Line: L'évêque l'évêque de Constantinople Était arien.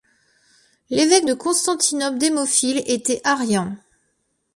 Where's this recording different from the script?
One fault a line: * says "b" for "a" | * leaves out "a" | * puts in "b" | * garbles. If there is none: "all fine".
* leaves out "l'évêque"
* puts in "Démophile"